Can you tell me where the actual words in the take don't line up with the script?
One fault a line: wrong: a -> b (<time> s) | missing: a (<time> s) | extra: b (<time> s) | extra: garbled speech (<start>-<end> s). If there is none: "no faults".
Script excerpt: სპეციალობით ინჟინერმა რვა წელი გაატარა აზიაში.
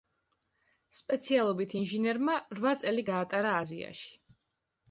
no faults